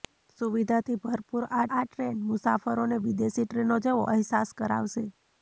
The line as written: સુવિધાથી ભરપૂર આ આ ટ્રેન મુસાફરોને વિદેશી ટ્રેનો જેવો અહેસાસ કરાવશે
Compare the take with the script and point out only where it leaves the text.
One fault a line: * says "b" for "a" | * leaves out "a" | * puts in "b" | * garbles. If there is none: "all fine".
all fine